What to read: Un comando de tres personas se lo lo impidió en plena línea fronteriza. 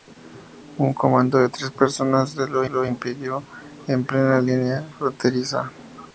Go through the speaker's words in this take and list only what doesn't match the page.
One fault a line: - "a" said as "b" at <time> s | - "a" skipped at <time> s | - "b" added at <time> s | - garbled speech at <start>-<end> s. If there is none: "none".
none